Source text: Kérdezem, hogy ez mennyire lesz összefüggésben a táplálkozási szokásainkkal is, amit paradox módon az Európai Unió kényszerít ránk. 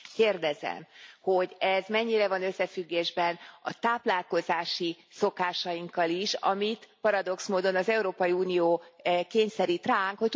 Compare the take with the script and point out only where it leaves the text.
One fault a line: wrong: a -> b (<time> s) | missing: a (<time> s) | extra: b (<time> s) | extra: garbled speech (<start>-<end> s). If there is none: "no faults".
wrong: lesz -> van (2.3 s)